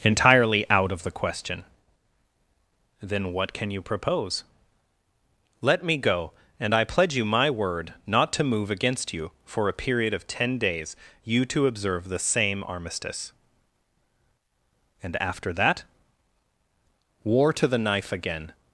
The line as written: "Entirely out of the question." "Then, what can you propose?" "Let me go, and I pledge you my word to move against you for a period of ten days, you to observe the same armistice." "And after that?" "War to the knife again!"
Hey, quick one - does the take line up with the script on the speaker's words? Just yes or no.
no